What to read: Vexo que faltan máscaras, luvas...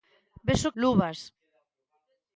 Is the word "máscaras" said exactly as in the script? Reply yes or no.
no